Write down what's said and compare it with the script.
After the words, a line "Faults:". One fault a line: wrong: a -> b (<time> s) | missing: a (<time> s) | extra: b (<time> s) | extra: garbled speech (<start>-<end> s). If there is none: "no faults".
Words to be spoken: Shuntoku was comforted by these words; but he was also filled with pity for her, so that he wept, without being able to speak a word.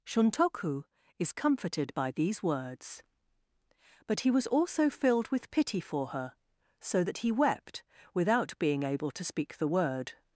Shuntoku is comforted by these words; but he was also filled with pity for her, so that he wept, without being able to speak the word.
Faults:
wrong: was -> is (1.2 s)
wrong: a -> the (9.6 s)